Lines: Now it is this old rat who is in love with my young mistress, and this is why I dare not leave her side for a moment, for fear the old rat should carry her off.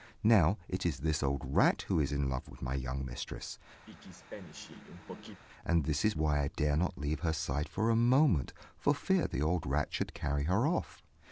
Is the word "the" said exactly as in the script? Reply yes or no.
yes